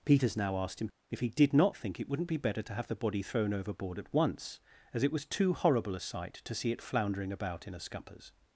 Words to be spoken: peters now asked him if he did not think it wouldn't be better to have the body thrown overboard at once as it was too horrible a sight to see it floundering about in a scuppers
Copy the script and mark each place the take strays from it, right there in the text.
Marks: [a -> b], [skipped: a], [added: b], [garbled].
peters now asked him if he did not think it wouldn't be better to have the body thrown overboard at once as it was too horrible a sight to see it floundering about in a scuppers